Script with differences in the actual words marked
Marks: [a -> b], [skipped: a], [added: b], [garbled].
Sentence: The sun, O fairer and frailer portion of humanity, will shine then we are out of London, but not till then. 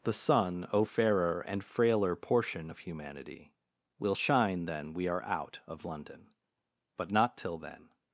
The sun, O fairer and frailer portion of humanity, will shine then we are out of London, but not till then.